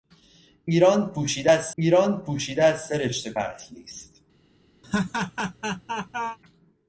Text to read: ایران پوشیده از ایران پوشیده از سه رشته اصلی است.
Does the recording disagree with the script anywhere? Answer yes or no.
no